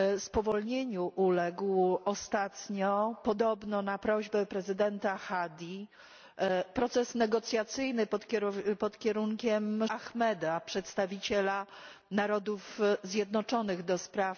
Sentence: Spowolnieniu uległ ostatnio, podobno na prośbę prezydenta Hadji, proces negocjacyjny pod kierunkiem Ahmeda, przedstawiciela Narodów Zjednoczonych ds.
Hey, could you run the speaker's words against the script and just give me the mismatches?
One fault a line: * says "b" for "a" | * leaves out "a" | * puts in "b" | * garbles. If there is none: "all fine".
all fine